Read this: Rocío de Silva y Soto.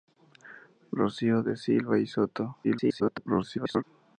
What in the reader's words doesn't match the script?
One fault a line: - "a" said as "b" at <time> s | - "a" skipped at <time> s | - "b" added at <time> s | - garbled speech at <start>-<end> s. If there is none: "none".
- garbled speech at 2.6-3.8 s